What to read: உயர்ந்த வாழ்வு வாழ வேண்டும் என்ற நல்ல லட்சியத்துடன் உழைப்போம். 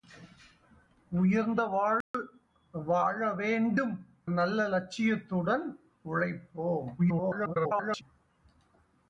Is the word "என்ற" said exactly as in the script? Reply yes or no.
no